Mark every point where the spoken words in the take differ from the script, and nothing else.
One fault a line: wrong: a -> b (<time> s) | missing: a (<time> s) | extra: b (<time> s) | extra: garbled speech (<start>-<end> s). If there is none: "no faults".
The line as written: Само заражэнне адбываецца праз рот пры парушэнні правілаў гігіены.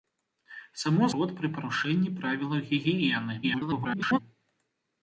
missing: заражэнне адбываецца праз (1.1 s)
extra: garbled speech (3.4-4.2 s)